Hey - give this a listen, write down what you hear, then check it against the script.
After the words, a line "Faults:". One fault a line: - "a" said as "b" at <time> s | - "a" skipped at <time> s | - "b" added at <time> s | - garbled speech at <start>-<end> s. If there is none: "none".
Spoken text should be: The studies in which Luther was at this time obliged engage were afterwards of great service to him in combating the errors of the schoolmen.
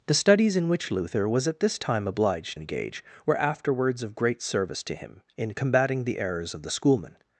The studies in which Luther was at this time obliged engage were afterwards of great service to him in combating the errors of the schoolmen.
Faults:
none